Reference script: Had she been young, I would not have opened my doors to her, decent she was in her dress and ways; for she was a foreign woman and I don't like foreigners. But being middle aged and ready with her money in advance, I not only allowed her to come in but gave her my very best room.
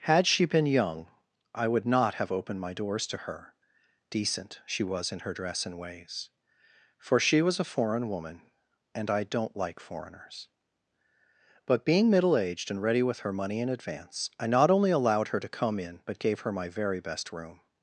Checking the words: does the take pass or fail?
pass